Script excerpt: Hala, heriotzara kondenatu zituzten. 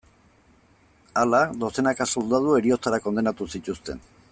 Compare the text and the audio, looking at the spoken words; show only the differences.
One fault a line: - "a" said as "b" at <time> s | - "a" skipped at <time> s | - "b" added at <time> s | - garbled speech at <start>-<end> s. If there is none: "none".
- "dozenaka soldadu" added at 1.6 s